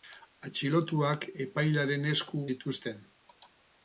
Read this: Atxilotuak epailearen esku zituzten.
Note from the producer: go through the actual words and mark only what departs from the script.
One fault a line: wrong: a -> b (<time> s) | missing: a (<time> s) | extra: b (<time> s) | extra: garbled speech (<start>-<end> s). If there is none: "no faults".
no faults